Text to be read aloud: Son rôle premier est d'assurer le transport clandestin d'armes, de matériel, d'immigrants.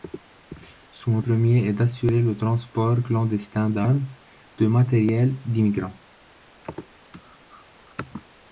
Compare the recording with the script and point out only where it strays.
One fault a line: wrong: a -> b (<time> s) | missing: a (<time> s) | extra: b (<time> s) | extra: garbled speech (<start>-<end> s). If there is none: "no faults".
missing: rôle (1.2 s)